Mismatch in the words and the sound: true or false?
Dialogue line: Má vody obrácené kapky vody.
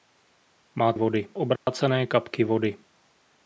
true